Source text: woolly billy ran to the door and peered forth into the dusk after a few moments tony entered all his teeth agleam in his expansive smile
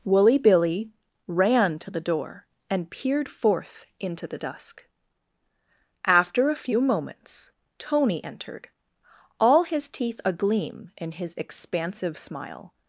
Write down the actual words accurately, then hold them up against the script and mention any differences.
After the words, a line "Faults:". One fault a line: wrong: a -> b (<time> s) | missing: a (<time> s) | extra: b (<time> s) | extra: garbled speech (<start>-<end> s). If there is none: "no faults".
woolly billy ran to the door and peered forth into the dusk after a few moments tony entered all his teeth agleam in his expansive smile
Faults:
no faults